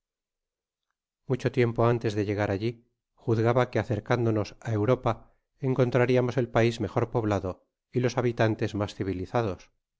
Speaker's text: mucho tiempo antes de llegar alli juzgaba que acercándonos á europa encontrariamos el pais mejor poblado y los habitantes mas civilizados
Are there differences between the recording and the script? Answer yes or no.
no